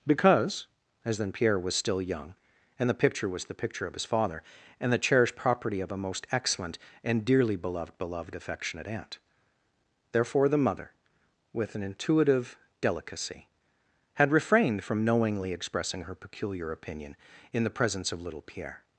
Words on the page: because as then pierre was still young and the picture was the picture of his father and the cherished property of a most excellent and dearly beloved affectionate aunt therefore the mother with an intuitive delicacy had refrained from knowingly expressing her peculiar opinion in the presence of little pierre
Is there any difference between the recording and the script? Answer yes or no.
yes